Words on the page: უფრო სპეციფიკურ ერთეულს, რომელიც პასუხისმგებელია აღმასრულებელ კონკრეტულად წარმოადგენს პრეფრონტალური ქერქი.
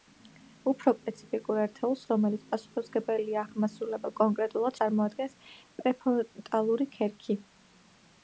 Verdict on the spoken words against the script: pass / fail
pass